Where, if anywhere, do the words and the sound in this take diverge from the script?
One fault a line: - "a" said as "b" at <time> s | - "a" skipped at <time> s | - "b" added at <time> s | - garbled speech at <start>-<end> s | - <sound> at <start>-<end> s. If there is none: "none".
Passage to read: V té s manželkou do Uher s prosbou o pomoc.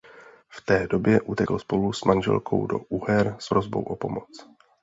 - "době utekl spolu" added at 0.9 s